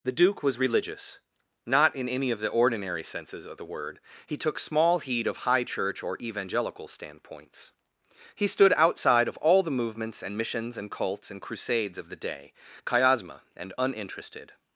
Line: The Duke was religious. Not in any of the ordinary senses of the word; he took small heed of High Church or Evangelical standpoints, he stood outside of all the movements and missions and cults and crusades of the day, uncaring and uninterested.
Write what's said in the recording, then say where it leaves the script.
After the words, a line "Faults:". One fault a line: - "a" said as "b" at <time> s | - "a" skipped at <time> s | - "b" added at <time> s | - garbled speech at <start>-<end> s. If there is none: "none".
The Duke was religious. Not in any of the ordinary senses of the word; he took small heed of High Church or Evangelical standpoints, he stood outside of all the movements and missions and cults and crusades of the day, chiasma and uninterested.
Faults:
- "uncaring" said as "chiasma" at 12.8 s